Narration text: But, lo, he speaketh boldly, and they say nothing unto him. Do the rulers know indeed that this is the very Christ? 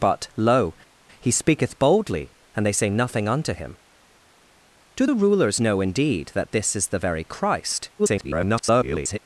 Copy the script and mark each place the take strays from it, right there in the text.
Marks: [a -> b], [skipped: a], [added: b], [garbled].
But, lo, he speaketh boldly, and they say nothing unto him. Do the rulers know indeed that this is the very Christ? [garbled]